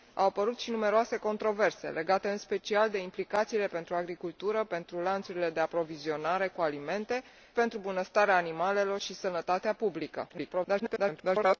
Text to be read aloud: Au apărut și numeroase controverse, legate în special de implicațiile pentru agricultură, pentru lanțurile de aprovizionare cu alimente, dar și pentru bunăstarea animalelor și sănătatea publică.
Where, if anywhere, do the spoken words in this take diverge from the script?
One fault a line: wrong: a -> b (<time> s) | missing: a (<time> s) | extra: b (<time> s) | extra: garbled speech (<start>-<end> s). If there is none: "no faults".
missing: dar și (7.2 s)
extra: garbled speech (10.3-11.6 s)